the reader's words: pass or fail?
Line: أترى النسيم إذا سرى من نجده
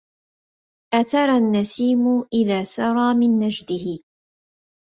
pass